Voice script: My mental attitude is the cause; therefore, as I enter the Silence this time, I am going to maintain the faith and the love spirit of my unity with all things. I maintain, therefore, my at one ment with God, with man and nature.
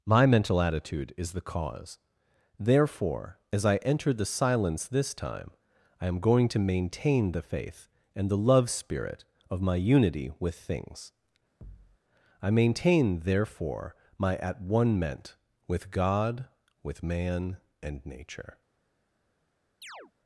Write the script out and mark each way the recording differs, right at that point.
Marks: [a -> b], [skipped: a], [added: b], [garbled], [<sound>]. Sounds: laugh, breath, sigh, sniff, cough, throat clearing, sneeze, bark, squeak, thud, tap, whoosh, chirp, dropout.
My mental attitude is the cause; therefore, as I enter the Silence this time, I am going to maintain the faith and the love spirit of my unity with [skipped: all] things. [thud] I maintain, therefore, my at one ment with God, with man and nature. [chirp]